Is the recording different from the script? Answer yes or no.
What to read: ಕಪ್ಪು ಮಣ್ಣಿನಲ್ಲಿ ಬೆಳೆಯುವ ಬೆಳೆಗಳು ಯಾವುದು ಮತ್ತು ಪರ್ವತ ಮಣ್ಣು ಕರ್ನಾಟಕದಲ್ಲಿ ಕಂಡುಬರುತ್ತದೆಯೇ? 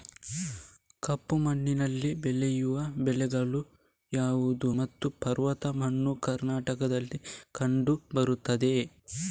no